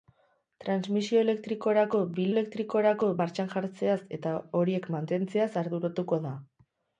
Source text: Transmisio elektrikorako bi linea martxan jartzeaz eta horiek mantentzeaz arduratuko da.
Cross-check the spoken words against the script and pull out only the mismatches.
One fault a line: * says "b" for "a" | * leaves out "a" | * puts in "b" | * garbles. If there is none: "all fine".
* says "elektrikorako" for "linea"